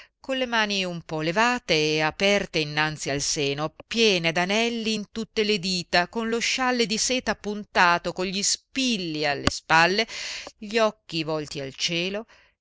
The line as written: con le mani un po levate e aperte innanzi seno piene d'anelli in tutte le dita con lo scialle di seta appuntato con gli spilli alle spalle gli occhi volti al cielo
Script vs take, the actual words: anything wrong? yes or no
yes